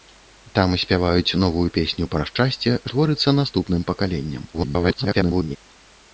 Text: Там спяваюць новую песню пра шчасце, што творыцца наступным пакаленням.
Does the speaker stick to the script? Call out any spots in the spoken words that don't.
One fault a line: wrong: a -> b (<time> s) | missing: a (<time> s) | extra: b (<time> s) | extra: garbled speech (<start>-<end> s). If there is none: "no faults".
missing: што (2.7 s)
extra: garbled speech (4.5-5.6 s)